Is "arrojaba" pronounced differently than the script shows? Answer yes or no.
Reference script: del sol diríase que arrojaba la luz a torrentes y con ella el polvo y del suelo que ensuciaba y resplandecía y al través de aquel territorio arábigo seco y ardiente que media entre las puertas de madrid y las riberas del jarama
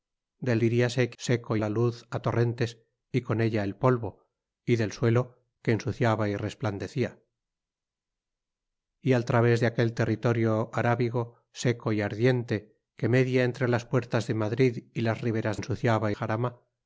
yes